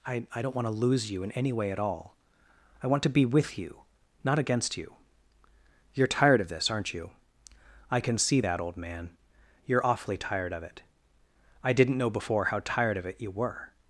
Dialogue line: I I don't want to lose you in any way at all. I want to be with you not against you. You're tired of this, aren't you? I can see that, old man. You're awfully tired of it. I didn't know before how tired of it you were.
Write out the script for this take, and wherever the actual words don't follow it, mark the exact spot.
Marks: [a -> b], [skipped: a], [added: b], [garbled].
I I don't want to lose you in any way at all. I want to be with you not against you. You're tired of this, aren't you? I can see that, old man. You're awfully tired of it. I didn't know before how tired of it you were.